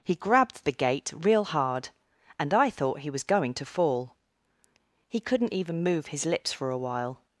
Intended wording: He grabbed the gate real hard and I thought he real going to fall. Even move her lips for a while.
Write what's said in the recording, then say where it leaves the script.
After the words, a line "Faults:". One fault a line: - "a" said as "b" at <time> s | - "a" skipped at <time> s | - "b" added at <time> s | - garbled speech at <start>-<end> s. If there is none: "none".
He grabbed the gate real hard and I thought he was going to fall. He couldn't even move his lips for a while.
Faults:
- "real" said as "was" at 3.1 s
- "He couldn't" added at 5.1 s
- "her" said as "his" at 6.1 s